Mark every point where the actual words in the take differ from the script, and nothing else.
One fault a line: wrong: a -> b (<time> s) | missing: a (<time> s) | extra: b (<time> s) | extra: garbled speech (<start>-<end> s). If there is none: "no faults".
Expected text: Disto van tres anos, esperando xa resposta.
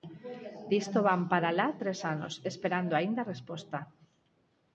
extra: para alá (1.3 s)
wrong: xa -> aínda (2.9 s)